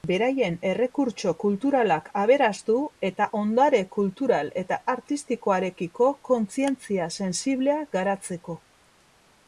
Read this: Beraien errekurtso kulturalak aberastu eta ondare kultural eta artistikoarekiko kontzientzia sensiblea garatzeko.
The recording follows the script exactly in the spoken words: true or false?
true